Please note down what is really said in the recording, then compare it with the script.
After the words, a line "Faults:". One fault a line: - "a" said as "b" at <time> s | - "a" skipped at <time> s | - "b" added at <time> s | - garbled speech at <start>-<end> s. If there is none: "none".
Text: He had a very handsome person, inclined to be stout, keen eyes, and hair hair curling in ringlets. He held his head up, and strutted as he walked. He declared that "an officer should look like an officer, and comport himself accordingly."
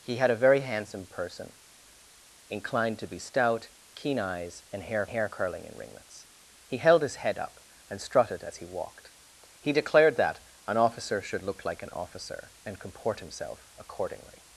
He had a very handsome person, inclined to be stout, keen eyes, and hair hair curling in ringlets. He held his head up, and strutted as he walked. He declared that "an officer should look like an officer, and comport himself accordingly."
Faults:
none